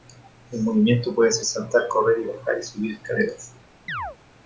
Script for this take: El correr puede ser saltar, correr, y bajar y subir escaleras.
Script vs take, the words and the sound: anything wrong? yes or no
yes